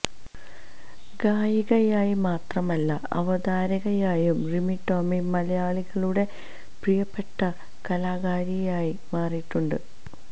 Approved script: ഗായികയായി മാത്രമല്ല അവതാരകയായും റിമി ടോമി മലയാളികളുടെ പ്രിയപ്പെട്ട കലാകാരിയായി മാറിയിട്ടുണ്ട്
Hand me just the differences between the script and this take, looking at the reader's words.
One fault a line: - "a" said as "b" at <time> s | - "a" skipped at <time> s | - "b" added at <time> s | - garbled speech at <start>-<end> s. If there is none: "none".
none